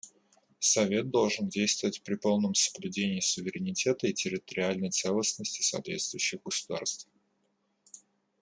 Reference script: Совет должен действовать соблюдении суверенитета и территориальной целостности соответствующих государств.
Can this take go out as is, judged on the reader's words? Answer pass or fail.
fail